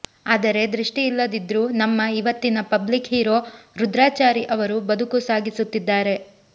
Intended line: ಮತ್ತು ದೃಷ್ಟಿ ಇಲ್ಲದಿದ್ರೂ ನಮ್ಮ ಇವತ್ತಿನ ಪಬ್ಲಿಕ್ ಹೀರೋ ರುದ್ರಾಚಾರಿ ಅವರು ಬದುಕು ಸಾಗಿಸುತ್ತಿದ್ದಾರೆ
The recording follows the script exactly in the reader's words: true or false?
false